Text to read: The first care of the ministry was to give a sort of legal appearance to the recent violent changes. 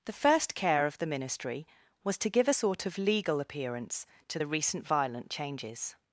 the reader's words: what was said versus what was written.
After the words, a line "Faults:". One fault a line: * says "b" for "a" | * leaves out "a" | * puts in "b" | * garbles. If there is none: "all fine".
The first care of the ministry was to give a sort of legal appearance to the recent violent changes.
Faults:
all fine